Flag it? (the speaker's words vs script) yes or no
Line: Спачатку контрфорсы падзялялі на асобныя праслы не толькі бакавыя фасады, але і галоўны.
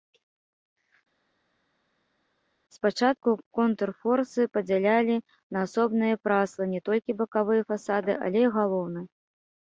no